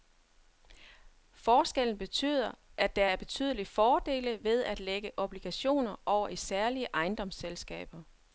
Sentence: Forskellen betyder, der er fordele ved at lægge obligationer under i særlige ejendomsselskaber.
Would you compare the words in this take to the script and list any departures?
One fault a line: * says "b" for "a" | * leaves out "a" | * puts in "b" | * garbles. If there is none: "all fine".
* puts in "at"
* puts in "betydelige"
* says "over" for "under"